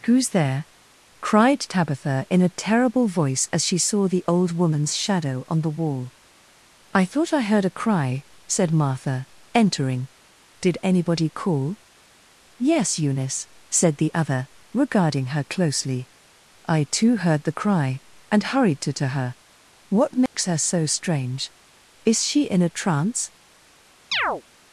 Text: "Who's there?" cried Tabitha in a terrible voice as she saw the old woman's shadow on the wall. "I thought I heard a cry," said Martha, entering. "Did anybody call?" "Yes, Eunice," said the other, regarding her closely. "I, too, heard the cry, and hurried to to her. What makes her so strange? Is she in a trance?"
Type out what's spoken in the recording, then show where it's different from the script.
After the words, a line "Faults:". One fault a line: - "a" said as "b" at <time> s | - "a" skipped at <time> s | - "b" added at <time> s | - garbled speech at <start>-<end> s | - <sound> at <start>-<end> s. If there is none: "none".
"Who's there?" cried Tabitha in a terrible voice as she saw the old woman's shadow on the wall. "I thought I heard a cry," said Martha, entering. "Did anybody call?" "Yes, Eunice," said the other, regarding her closely. "I, too, heard the cry, and hurried to to her. What makes her so strange? Is she in a trance?"
Faults:
- dropout at 20.3-20.3 s
- chirp at 24.1-24.4 s